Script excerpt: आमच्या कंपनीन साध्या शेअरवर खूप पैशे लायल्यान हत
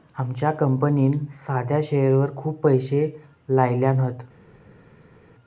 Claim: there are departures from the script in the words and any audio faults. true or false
false